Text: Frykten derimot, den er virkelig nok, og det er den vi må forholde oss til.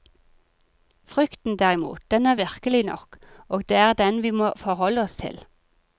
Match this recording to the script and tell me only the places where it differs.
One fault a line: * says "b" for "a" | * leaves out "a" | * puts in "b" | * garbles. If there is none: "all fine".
all fine